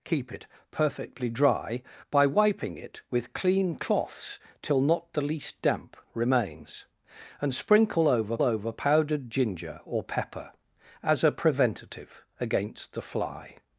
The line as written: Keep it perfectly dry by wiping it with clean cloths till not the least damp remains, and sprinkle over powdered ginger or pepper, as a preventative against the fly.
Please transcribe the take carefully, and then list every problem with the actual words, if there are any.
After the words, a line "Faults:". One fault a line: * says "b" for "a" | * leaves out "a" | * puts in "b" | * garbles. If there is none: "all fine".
Keep it perfectly dry by wiping it with clean cloths till not the least damp remains, and sprinkle over over powdered ginger or pepper, as a preventative against the fly.
Faults:
* puts in "over"